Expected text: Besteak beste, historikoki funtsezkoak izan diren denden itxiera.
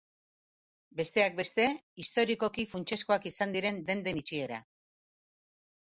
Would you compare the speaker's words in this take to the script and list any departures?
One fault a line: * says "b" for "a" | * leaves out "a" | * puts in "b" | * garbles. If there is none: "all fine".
all fine